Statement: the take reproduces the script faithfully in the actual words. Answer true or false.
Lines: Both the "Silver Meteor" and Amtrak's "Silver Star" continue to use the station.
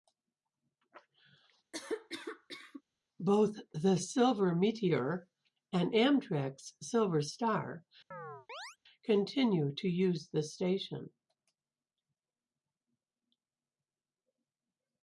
true